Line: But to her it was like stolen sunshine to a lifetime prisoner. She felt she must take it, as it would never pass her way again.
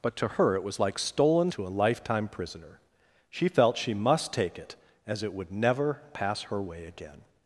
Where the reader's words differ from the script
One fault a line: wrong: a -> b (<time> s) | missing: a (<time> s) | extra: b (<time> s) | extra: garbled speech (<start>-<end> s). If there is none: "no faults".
missing: sunshine (1.5 s)